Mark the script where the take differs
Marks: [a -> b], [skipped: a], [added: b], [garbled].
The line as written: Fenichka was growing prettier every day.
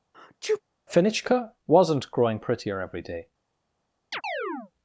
Fenichka [was -> wasn't] growing prettier every day.